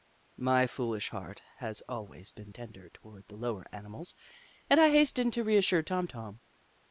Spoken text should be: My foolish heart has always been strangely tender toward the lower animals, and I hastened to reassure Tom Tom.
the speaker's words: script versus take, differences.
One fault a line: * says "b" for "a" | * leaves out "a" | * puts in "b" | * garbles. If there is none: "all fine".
* leaves out "strangely"